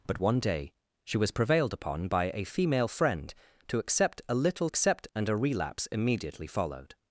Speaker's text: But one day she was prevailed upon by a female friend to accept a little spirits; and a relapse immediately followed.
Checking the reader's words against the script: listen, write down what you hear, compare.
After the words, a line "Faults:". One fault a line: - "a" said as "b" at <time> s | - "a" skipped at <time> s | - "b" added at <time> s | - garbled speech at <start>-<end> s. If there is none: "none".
But one day she was prevailed upon by a female friend to accept a little accept; and a relapse immediately followed.
Faults:
- "spirits" said as "accept" at 4.6 s